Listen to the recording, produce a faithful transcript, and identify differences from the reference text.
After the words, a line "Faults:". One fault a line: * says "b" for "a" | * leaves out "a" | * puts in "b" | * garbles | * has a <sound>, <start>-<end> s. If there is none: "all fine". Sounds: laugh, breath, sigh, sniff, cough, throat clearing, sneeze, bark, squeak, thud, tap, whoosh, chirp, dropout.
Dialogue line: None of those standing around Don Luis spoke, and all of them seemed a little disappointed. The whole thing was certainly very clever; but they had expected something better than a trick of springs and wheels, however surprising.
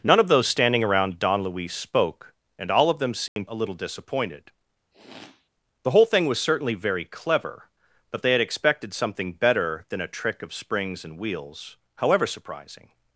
None of those standing around Don Luis spoke, and all of them seemed a little disappointed. The whole thing was certainly very clever; but they had expected something better than a trick of springs and wheels, however surprising.
Faults:
* has a dropout, 3.3-3.4 s
* has a sniff, 4.9-5.5 s